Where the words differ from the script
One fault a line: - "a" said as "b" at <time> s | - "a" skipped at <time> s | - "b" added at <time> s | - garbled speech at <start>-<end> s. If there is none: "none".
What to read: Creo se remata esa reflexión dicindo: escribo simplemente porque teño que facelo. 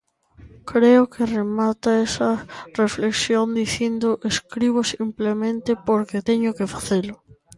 - "se" said as "que" at 1.1 s